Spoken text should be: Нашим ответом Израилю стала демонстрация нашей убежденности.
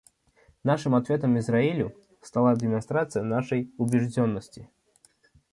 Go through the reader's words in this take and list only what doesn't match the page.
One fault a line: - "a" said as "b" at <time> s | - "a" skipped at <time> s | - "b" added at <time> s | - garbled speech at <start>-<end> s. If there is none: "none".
none